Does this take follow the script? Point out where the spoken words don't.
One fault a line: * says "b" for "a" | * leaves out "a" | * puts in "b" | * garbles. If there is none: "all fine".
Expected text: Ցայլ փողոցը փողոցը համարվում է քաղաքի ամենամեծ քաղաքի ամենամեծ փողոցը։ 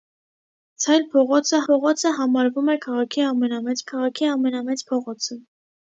all fine